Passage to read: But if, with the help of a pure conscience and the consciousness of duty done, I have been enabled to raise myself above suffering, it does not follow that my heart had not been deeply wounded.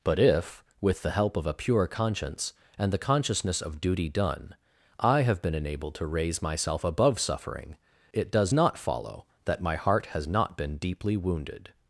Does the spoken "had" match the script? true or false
false